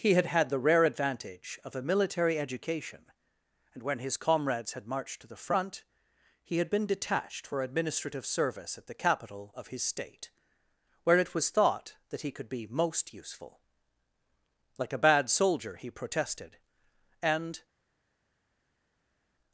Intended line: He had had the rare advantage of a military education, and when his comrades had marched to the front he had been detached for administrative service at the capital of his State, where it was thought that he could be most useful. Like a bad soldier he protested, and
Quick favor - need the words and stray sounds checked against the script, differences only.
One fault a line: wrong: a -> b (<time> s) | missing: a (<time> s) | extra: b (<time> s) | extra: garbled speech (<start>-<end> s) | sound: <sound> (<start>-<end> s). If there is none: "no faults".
no faults